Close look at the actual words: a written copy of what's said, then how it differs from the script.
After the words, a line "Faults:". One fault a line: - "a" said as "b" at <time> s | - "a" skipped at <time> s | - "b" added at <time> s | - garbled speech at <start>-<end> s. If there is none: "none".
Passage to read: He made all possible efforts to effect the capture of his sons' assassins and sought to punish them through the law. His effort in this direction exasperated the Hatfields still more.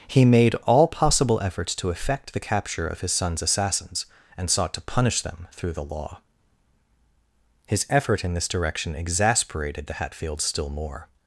He made all possible efforts to effect the capture of his sons' assassins and sought to punish them through the law. His effort in this direction exasperated the Hatfields still more.
Faults:
none